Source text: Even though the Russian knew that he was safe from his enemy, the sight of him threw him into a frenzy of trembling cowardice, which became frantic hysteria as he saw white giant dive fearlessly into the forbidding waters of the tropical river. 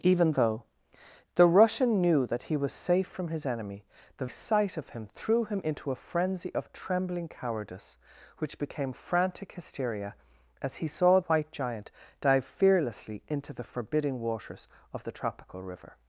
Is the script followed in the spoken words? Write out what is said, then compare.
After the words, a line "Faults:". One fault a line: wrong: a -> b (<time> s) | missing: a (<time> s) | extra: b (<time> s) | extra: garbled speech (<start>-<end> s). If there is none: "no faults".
Even though the Russian knew that he was safe from his enemy, the sight of him threw him into a frenzy of trembling cowardice, which became frantic hysteria as he saw white giant dive fearlessly into the forbidding waters of the tropical river.
Faults:
no faults